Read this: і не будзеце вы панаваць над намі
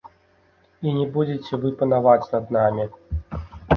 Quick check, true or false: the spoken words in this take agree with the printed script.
true